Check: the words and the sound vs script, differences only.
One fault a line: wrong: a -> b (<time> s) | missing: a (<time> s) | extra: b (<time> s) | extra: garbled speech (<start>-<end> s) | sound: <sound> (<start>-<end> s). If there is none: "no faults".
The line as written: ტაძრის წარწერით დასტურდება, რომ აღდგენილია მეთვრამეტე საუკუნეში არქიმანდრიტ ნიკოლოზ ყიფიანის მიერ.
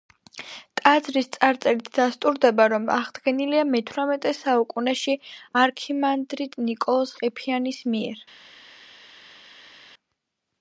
no faults